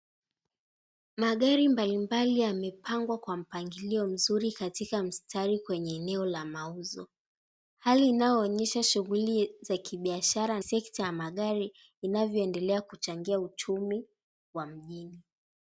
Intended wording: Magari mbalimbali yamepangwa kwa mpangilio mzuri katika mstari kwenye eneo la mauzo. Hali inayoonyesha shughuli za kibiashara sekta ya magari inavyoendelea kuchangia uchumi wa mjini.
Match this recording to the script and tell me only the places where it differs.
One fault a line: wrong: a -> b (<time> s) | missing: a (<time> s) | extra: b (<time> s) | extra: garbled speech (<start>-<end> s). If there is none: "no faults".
no faults